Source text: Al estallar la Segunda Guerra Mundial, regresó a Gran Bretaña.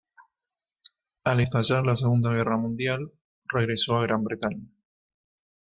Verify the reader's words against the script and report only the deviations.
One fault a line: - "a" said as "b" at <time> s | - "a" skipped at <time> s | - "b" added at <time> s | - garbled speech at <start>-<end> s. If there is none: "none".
none